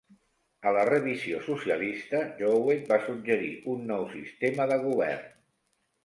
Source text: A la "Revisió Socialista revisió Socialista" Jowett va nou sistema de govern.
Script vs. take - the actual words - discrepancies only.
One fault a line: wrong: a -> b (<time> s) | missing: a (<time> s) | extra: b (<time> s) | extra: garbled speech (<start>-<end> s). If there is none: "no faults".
wrong: revisió Socialista Jowett va -> Jowett va suggerir un (2.4 s)